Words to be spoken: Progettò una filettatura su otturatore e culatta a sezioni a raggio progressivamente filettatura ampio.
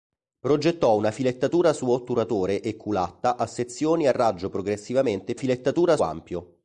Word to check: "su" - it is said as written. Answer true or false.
true